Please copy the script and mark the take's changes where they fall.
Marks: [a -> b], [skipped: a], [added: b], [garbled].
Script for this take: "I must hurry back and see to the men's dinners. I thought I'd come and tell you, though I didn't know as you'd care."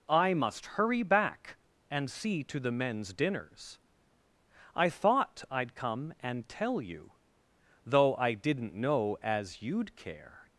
"I must hurry back and see to the men's dinners. I thought I'd come and tell you, though I didn't know as you'd care."